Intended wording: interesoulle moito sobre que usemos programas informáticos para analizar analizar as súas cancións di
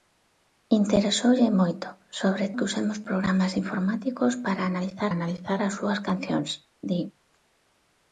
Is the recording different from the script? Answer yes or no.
no